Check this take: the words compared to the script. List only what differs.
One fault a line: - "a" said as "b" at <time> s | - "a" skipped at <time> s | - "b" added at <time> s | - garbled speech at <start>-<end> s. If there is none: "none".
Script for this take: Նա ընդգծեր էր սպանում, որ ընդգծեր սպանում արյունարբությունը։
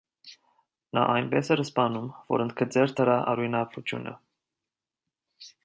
- "ընդգծեր" said as "այնպես" at 1.1 s
- "սպանում" said as "դրա" at 3.0 s